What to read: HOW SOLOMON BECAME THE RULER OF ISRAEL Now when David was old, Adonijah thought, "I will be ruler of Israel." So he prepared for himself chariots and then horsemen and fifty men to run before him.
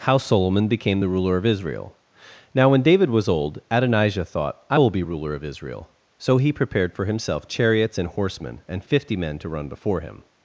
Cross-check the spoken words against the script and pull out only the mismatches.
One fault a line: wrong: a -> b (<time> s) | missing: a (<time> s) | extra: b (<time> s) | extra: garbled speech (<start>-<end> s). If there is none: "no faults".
missing: then (8.1 s)